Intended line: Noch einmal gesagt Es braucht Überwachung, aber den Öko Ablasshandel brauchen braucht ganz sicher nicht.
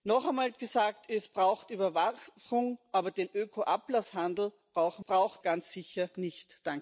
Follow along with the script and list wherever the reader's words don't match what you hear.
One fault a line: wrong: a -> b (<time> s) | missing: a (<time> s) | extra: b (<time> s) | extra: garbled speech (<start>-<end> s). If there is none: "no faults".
no faults